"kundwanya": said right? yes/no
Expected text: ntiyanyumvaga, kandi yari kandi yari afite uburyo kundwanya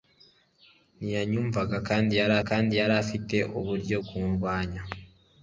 yes